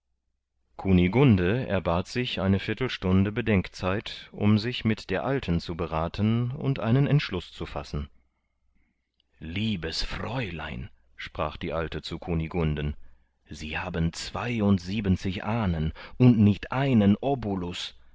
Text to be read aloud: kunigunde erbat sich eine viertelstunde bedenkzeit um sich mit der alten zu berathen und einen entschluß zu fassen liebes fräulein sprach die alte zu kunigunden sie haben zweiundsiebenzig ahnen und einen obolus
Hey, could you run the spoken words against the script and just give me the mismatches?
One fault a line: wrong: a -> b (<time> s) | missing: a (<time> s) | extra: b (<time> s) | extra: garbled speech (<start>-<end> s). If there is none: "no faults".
extra: nicht (16.4 s)